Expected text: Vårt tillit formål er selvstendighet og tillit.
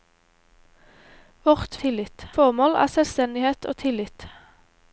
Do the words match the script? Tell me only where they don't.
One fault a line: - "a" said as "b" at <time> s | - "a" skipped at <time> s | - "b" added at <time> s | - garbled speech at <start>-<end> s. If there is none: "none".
none